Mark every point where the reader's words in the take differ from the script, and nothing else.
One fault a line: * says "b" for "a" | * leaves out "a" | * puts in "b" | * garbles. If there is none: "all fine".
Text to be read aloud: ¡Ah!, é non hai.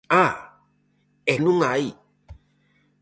all fine